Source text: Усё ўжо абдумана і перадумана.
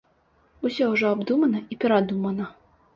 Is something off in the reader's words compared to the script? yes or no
no